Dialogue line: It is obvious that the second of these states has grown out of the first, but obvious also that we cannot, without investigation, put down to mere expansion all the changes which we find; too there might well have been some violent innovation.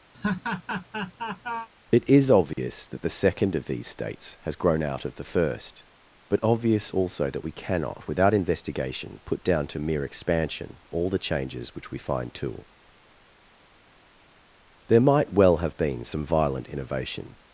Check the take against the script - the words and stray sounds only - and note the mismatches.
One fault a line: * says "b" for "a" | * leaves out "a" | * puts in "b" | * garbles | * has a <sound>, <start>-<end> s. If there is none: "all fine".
* has a laugh, 0.1-1.7 s
* has a dropout, 2.5-2.6 s